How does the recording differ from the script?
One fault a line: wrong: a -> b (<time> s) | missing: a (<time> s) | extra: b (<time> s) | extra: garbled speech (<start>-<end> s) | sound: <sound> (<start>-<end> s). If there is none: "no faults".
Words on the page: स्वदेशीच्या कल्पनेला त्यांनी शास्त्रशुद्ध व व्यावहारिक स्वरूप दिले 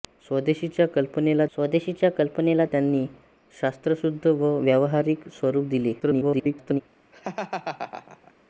extra: स्वदेशीच्या कल्पनेला (1.5 s)
extra: garbled speech (6.0-6.8 s)
sound: laugh (7.1-8.3 s)